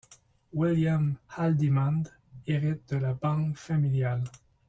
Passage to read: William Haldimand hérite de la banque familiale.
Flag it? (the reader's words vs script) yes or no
no